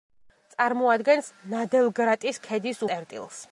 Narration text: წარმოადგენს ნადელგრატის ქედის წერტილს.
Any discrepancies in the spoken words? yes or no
no